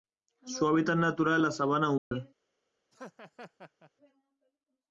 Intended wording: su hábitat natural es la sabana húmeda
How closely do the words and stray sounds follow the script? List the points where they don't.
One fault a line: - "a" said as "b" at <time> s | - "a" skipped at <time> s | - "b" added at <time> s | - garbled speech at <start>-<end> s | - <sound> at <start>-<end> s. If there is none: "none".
- dropout at 2.0-2.1 s
- laugh at 2.9-3.9 s